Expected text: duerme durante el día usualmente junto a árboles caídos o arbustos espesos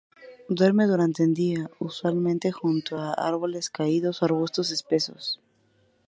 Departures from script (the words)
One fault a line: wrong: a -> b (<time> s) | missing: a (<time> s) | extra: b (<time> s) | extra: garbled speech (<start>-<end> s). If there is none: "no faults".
no faults